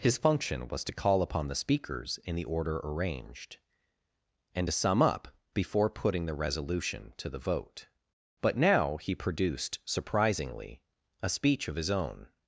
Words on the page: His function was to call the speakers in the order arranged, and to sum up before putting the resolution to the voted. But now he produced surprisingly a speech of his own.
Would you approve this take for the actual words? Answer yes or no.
no